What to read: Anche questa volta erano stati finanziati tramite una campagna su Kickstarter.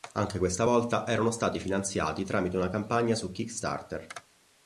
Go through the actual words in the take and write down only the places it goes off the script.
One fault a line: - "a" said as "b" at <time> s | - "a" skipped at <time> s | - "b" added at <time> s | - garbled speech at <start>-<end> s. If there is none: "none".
none